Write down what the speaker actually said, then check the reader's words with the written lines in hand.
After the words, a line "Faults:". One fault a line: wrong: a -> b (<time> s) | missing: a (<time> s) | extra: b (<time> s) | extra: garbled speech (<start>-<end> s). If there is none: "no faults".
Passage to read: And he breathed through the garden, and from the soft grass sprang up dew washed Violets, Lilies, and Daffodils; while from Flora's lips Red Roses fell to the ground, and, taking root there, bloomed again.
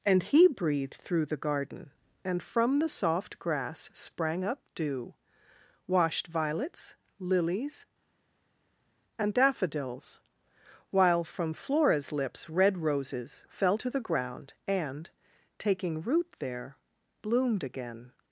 And he breathed through the garden, and from the soft grass sprang up dew washed Violets, Lilies, and Daffodils; while from Flora's lips Red Roses fell to the ground, and, taking root there, bloomed again.
Faults:
no faults